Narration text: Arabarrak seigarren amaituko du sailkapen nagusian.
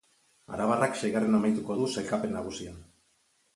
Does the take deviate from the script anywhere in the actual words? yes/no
no